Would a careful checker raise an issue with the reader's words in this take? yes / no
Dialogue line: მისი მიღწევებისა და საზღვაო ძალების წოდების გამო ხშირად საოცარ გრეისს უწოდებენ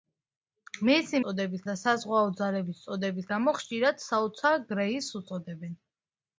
yes